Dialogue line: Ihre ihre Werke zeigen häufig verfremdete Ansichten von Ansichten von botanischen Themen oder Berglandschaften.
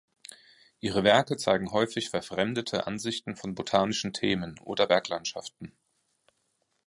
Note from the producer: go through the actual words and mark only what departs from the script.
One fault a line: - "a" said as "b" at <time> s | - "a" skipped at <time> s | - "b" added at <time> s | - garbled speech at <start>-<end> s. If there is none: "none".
- "ihre" skipped at 1.0 s
- "Ansichten von" skipped at 3.5 s